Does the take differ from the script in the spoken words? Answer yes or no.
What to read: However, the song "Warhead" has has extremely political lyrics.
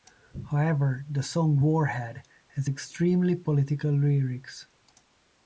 yes